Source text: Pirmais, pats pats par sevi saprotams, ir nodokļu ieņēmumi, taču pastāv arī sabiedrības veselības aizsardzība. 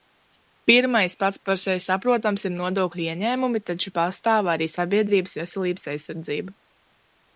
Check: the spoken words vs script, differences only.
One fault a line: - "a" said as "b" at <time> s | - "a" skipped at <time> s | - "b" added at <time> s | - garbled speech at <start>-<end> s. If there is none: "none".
- "pats" skipped at 1.4 s